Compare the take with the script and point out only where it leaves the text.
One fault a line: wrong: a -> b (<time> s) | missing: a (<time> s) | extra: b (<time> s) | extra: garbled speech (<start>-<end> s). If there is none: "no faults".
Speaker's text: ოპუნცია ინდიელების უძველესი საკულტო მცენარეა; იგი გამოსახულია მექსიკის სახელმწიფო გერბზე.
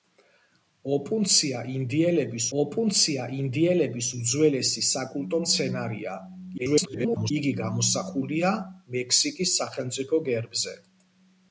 extra: ოპუნცია ინდიელების (2.6 s)
extra: garbled speech (6.6-7.3 s)